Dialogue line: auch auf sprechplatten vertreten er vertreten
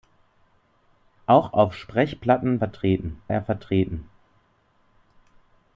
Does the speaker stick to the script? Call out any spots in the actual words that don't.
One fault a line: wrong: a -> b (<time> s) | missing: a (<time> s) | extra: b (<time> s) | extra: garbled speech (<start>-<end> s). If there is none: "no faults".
no faults